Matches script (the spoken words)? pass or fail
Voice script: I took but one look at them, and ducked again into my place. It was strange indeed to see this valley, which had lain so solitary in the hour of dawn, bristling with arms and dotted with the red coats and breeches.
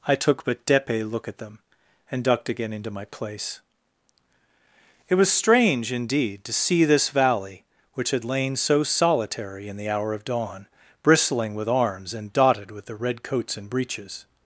fail